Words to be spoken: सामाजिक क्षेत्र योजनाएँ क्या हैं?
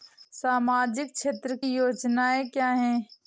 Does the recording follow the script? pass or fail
pass